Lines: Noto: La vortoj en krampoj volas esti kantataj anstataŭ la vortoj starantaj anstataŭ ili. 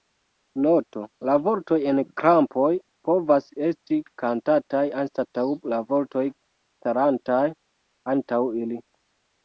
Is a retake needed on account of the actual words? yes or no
yes